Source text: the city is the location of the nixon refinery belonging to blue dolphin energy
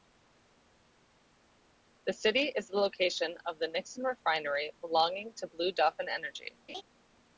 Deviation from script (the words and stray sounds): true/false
true